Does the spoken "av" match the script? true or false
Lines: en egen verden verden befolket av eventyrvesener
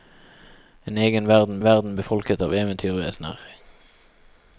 true